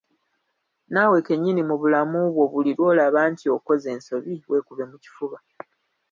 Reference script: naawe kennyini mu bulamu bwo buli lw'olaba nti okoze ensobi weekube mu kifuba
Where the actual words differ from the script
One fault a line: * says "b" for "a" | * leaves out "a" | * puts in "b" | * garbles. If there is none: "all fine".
all fine